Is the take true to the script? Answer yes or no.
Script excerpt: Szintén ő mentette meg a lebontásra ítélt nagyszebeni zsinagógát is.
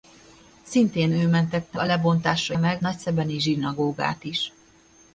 no